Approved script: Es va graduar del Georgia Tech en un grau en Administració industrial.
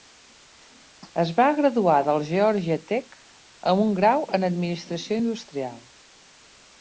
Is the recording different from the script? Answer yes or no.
yes